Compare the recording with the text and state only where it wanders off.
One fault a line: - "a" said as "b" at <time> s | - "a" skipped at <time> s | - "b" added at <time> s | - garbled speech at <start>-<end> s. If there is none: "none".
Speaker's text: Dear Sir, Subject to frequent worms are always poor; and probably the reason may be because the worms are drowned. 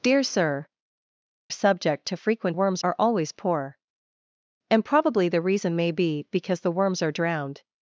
none